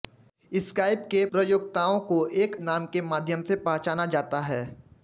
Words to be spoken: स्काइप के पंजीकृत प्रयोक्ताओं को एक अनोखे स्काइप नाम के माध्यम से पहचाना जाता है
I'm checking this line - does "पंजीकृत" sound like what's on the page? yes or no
no